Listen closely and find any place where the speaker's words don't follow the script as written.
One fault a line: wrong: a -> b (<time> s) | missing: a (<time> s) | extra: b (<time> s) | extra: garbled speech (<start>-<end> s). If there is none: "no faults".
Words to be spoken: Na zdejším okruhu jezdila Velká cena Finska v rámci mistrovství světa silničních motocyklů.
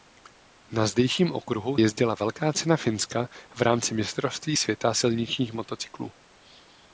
no faults